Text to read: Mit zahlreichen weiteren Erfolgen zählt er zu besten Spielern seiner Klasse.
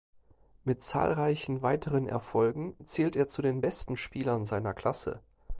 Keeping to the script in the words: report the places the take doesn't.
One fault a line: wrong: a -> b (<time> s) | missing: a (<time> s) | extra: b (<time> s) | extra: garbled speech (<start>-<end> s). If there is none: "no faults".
extra: den (3.4 s)